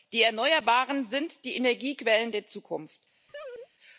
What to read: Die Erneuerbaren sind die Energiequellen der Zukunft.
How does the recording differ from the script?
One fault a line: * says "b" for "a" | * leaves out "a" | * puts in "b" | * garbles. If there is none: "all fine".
all fine